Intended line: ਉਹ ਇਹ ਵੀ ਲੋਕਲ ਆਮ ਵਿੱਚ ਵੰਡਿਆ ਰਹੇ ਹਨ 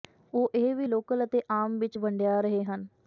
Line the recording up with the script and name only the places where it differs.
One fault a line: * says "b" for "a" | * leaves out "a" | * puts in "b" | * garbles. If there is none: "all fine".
* puts in "ਅਤੇ"